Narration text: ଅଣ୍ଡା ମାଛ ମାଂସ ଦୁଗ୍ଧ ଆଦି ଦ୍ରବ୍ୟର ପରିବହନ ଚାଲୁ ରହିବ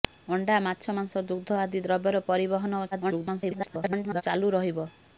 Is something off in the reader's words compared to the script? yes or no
yes